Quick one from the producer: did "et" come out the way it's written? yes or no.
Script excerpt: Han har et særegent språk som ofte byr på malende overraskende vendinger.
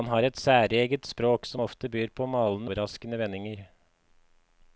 yes